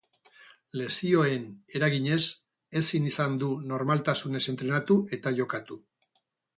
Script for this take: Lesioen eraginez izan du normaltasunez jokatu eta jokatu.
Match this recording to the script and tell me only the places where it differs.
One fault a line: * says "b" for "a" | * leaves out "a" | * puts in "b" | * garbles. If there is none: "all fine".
* puts in "ezin"
* says "entrenatu" for "jokatu"